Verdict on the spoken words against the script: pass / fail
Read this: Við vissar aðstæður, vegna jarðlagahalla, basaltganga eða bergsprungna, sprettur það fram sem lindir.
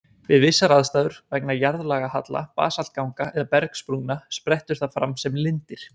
pass